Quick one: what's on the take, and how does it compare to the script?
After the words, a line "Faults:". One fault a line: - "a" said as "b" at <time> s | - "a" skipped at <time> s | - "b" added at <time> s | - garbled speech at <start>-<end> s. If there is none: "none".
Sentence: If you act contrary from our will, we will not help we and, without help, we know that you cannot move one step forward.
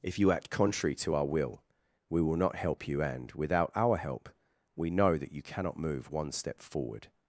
If you act contrary to our will, we will not help you and, without our help, we know that you cannot move one step forward.
Faults:
- "from" said as "to" at 0.9 s
- "we" said as "you" at 2.9 s
- "our" added at 3.8 s